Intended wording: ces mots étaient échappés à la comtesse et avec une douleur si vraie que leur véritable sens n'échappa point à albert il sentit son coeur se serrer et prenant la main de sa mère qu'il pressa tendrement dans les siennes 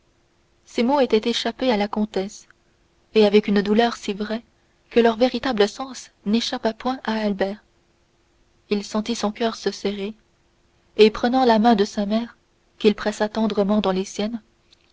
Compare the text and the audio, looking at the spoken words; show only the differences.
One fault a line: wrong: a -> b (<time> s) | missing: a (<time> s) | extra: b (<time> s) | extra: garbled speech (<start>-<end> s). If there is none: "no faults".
no faults